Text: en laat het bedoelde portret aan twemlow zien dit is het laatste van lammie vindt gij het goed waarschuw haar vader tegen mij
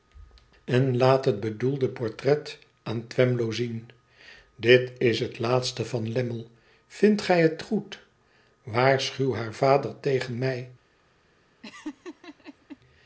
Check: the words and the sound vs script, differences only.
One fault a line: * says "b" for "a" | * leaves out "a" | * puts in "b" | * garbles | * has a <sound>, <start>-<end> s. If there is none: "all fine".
* has a laugh, 11.6-12.8 s